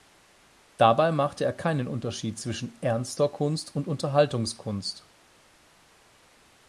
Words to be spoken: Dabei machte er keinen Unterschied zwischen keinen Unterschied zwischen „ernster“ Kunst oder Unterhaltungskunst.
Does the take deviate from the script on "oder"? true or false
true